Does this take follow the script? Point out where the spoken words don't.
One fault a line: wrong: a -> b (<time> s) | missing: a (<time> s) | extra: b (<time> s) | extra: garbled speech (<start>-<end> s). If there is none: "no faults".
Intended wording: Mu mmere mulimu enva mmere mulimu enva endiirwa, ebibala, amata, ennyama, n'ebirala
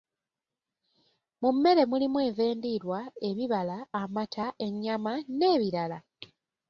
missing: mmere mulimu enva (2.4 s)